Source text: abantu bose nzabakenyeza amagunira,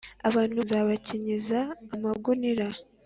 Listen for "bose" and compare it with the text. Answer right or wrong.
wrong